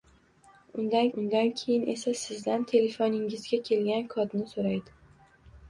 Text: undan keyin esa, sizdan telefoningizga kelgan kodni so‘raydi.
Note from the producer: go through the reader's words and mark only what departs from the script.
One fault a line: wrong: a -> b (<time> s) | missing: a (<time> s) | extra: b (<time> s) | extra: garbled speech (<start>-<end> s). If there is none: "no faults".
extra: undan (1.2 s)